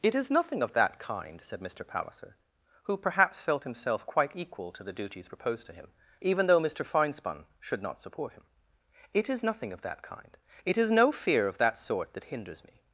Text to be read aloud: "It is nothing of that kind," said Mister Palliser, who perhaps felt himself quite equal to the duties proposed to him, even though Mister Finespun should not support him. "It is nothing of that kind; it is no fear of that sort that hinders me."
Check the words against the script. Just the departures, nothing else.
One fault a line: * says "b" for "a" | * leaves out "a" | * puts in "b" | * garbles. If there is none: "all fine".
all fine